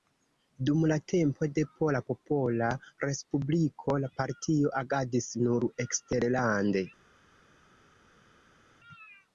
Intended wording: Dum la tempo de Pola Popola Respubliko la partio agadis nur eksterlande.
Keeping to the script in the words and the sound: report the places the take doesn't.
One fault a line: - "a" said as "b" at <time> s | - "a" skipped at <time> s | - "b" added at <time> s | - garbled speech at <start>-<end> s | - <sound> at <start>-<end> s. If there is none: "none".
none